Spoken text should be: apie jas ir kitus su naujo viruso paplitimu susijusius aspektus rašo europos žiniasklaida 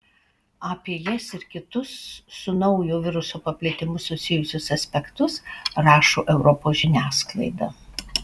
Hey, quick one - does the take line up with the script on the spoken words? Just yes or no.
yes